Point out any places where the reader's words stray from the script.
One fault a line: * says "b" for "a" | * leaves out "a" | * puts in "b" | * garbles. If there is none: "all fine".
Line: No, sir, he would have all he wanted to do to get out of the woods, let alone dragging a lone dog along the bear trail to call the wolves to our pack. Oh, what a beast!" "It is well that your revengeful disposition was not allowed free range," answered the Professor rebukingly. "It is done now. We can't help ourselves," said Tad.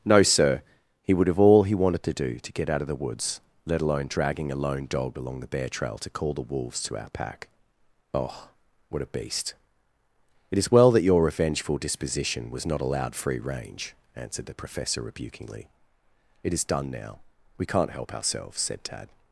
all fine